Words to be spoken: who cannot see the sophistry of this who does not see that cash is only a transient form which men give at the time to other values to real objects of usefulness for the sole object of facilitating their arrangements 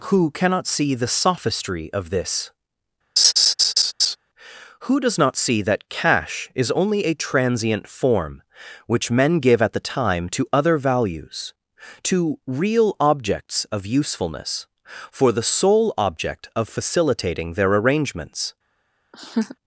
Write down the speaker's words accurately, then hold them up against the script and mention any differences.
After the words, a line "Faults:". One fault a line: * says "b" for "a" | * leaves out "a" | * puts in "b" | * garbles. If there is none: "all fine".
who cannot see the sophistry of this who does not see that cash is only a transient form which men give at the time to other values to real objects of usefulness for the sole object of facilitating their arrangements
Faults:
all fine